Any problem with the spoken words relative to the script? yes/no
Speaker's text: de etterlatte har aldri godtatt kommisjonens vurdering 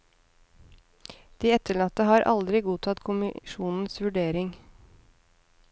no